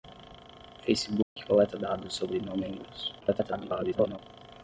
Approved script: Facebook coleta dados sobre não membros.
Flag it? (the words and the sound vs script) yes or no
yes